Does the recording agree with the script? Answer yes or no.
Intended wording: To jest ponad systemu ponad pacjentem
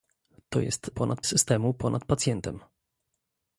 yes